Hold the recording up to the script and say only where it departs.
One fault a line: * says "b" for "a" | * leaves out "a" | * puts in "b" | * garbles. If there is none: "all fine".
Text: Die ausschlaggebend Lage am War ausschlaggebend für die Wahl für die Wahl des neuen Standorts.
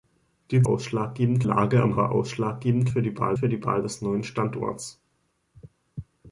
all fine